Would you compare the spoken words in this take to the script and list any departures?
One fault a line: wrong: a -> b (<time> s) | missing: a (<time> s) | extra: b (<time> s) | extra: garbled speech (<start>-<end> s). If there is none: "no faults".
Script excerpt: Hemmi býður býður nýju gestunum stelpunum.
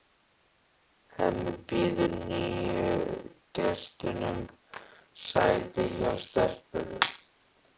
missing: býður (2.1 s)
extra: sæti hjá (5.3 s)